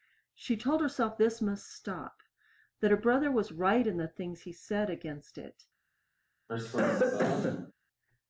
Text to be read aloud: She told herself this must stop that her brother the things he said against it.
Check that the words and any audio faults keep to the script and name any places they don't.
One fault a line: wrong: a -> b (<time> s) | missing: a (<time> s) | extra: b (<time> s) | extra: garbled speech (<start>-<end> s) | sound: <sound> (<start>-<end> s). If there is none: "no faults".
extra: was right in (3.3 s)
sound: cough (6.5-7.7 s)